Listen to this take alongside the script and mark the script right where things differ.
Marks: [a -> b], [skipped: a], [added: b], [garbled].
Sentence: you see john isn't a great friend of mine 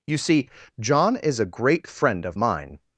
you see john [isn't -> is] a great friend of mine